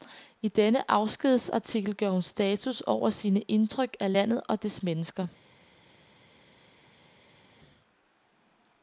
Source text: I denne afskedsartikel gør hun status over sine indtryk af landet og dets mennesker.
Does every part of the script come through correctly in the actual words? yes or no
yes